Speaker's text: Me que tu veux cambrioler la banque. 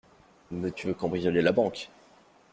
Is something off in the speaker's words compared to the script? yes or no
no